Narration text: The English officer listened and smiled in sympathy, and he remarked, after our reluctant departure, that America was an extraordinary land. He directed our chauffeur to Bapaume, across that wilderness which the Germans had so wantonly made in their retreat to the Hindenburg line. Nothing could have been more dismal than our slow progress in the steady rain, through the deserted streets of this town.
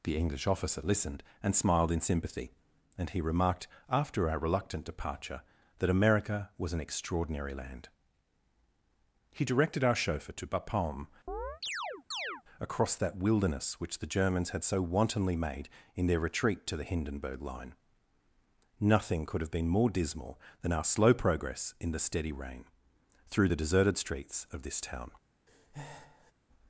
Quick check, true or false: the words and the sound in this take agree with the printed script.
false